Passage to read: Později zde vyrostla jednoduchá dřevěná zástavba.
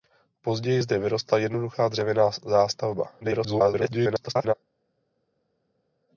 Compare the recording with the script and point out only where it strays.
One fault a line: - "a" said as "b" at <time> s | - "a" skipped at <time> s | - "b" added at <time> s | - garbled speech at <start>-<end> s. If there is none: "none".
- garbled speech at 3.2-4.5 s